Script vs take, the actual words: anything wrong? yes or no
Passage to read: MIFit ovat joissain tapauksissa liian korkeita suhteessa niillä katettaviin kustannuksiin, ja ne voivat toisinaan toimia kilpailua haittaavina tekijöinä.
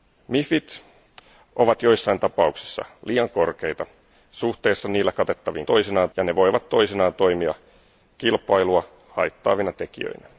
yes